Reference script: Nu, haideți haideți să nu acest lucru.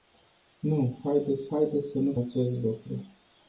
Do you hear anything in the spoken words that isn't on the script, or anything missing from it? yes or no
no